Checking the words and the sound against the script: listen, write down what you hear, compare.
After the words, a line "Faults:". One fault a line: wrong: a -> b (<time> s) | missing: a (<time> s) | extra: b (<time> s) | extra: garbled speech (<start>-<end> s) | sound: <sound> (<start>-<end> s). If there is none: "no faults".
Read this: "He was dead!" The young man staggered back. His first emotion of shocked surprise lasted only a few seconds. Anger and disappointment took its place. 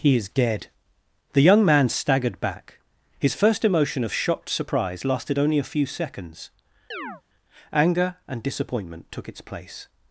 "He is dead!" The young man staggered back. His first emotion of shocked surprise lasted only a few seconds. Anger and disappointment took its place.
Faults:
wrong: was -> is (0.1 s)
sound: chirp (6.9-7.2 s)